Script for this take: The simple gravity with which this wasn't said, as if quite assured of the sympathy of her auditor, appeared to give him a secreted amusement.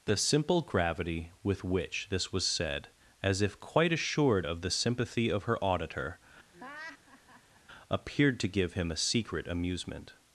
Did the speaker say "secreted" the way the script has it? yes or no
no